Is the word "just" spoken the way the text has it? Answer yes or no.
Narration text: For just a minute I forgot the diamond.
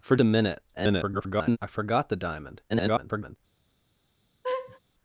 no